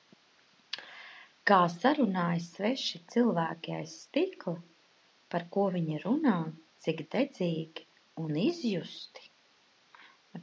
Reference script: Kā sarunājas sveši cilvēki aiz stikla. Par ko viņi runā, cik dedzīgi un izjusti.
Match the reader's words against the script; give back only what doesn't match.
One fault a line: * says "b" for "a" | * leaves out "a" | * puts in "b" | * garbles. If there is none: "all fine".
all fine